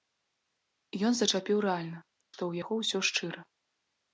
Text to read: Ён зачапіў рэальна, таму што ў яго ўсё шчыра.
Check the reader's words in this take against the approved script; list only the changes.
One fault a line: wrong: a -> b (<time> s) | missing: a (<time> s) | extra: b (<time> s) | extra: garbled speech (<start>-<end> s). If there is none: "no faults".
missing: таму (2.0 s)